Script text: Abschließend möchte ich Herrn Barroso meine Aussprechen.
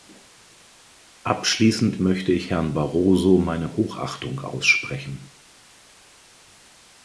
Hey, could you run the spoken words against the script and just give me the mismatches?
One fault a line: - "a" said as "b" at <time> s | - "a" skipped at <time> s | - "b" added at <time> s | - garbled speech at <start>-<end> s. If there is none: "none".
- "Hochachtung" added at 3.8 s